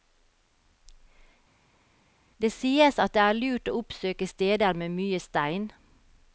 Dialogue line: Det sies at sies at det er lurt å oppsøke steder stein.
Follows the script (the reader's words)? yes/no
no